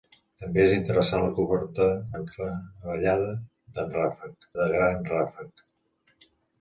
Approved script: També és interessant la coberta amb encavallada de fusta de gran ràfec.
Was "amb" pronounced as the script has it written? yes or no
no